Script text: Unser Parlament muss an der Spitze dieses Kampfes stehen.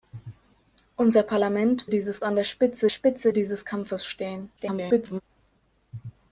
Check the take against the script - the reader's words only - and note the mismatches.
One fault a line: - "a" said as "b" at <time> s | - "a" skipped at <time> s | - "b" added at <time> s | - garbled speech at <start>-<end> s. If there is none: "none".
- "muss" said as "dieses" at 1.9 s
- "Spitze" added at 2.9 s
- garbled speech at 4.6-5.2 s